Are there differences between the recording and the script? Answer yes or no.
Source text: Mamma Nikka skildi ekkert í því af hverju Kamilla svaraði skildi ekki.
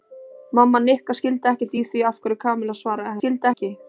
no